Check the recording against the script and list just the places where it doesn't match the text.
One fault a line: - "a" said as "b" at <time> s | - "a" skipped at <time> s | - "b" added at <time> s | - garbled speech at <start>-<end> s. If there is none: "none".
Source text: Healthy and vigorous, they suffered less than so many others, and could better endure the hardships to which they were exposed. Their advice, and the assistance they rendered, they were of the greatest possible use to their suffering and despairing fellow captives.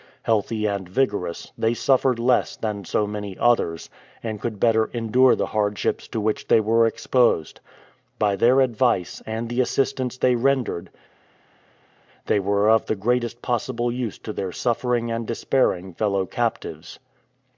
- "By" added at 8.2 s